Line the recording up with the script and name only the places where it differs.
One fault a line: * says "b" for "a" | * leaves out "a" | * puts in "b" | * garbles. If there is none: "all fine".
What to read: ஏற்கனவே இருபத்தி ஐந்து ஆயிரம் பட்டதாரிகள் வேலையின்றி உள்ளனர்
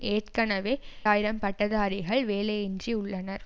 * leaves out "இருபத்தி ஐந்து"